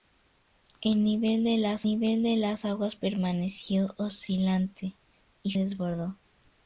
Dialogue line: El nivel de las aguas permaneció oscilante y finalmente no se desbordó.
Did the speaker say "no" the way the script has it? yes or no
no